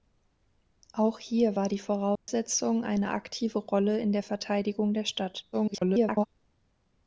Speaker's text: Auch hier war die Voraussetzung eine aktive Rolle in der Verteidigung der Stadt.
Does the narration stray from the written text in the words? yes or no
yes